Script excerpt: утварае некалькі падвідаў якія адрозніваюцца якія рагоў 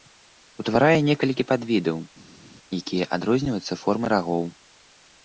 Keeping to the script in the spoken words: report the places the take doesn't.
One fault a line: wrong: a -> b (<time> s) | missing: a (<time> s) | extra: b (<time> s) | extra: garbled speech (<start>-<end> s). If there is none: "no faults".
wrong: якія -> формай (3.8 s)